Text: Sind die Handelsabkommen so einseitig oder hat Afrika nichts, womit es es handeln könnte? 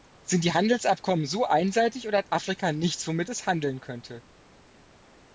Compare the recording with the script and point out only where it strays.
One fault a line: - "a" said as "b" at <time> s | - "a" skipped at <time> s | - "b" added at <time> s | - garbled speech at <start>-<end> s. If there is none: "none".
- "es" skipped at 3.5 s